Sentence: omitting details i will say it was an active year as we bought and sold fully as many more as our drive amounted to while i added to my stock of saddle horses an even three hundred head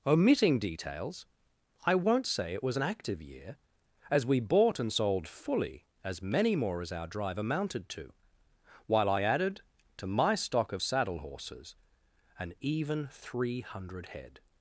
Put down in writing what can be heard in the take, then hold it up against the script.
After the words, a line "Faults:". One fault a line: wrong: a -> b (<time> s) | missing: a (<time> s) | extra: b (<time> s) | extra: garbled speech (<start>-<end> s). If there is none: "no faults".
omitting details i won't say it was an active year as we bought and sold fully as many more as our drive amounted to while i added to my stock of saddle horses an even three hundred head
Faults:
wrong: will -> won't (1.9 s)